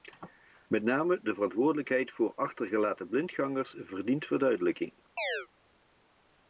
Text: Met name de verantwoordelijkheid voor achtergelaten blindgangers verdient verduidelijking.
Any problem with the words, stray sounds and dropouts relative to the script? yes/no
yes